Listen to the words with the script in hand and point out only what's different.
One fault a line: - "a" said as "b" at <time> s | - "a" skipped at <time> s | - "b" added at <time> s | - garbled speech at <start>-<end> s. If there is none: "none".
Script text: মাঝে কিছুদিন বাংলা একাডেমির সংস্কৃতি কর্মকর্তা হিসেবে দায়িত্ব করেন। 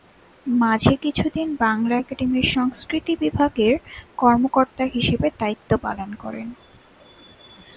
- "বিভাগের" added at 3.2 s
- "পালন" added at 5.8 s